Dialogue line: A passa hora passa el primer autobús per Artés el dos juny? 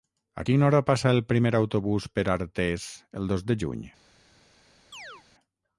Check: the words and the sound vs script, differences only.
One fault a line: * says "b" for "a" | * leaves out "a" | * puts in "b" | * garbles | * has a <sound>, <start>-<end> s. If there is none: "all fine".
* says "quina" for "passa"
* puts in "de"
* has a chirp, 4.9-5.2 s